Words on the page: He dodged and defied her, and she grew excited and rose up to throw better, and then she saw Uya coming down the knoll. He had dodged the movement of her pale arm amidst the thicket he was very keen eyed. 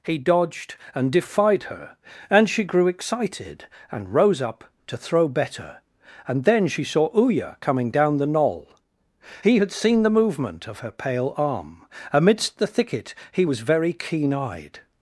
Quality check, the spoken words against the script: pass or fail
fail